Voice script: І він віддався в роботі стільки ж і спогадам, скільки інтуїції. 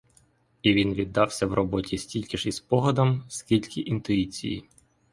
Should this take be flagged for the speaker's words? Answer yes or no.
no